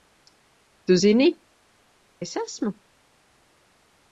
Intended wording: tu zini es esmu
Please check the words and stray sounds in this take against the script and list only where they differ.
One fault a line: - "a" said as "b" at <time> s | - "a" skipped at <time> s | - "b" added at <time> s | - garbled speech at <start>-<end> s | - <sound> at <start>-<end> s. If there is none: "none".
none